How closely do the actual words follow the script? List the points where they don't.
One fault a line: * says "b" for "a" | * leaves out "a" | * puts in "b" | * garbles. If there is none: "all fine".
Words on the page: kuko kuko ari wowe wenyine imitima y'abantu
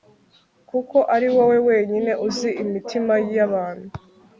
* leaves out "kuko"
* puts in "uzi"